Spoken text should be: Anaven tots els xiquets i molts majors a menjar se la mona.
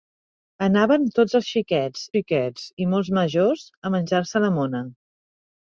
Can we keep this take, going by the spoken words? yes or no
no